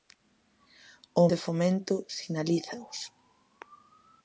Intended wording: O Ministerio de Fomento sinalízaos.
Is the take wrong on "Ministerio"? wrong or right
wrong